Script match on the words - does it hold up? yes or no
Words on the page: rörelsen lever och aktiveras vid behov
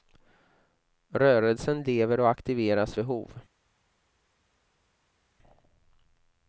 no